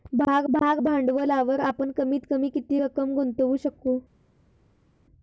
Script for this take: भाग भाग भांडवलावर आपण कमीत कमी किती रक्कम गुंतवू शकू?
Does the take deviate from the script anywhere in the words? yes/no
no